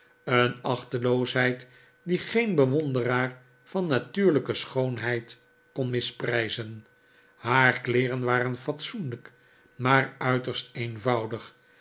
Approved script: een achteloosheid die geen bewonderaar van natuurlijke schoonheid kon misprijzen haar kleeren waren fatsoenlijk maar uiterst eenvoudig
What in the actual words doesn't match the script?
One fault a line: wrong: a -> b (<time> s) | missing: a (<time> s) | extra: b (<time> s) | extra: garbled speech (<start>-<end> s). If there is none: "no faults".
no faults